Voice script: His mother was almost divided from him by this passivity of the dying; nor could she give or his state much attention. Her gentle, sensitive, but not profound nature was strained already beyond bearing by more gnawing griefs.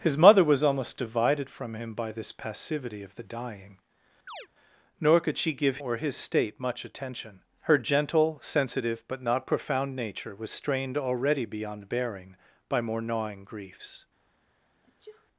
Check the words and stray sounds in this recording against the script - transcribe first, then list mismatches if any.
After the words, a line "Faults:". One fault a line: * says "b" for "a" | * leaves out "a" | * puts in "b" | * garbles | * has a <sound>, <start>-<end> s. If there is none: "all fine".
His mother was almost divided from him by this passivity of the dying; nor could she give or his state much attention. Her gentle, sensitive, but not profound nature was strained already beyond bearing by more gnawing griefs.
Faults:
* has a chirp, 4.3-4.5 s
* has a sneeze, 14.8-15.3 s